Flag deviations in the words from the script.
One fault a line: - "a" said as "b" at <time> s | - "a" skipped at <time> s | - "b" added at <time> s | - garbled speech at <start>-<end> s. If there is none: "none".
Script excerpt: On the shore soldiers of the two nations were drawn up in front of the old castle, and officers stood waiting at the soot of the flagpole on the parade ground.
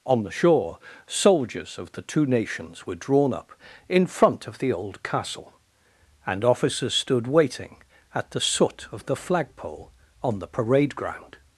none